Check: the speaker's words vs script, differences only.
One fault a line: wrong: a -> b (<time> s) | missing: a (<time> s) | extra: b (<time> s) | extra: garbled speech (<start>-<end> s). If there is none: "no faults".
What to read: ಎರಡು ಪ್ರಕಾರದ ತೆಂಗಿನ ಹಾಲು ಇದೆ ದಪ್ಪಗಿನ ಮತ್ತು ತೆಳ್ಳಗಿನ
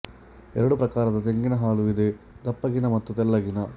no faults